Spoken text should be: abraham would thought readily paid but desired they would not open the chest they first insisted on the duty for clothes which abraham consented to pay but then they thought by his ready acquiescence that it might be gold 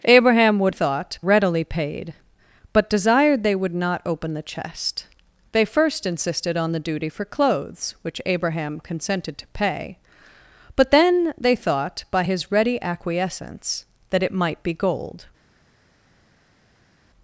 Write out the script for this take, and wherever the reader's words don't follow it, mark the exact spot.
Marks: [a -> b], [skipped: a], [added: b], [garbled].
abraham would thought readily paid but desired they would not open the chest they first insisted on the duty for clothes which abraham consented to pay but then they thought by his ready acquiescence that it might be gold